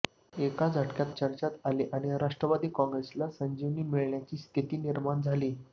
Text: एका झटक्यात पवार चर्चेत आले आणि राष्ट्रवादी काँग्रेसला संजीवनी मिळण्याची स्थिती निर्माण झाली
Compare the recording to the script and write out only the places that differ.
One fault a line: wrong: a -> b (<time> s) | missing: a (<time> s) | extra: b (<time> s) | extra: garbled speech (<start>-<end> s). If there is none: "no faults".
missing: पवार (1.1 s)